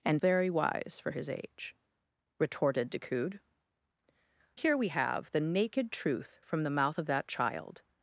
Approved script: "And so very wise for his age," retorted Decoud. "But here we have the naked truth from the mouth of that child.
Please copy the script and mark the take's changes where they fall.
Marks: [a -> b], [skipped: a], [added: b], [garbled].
"And [skipped: so] very wise for his age," retorted Decoud. [skipped: "But] here we have the naked truth from the mouth of that child.